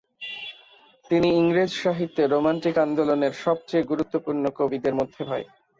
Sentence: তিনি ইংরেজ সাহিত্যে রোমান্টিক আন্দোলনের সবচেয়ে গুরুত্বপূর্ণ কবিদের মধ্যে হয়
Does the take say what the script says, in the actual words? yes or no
yes